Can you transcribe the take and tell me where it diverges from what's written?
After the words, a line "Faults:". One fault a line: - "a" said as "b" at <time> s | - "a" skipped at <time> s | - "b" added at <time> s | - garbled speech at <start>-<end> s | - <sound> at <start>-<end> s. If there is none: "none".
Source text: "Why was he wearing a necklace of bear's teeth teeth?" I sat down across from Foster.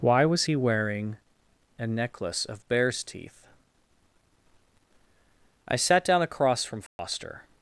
"Why was he wearing a necklace of bear's teeth?" I sat down across from Foster.
Faults:
- "teeth" skipped at 3.5 s
- dropout at 6.9-7.0 s